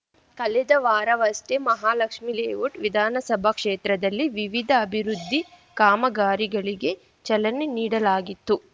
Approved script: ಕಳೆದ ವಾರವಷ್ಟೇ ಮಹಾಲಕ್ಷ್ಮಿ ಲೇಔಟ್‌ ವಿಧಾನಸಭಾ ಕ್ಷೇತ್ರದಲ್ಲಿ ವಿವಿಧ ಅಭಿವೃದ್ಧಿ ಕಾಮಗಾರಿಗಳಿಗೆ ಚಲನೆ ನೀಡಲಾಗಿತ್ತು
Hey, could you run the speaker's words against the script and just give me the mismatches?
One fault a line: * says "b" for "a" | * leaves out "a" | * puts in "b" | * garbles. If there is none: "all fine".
all fine